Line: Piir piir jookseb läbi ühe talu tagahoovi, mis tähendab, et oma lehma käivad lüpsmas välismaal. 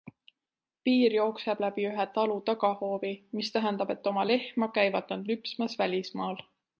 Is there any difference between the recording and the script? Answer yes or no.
yes